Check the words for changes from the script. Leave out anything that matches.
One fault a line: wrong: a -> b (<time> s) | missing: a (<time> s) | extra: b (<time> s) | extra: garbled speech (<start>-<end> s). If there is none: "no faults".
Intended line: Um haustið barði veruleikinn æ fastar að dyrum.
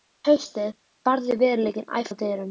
missing: fastar (2.0 s)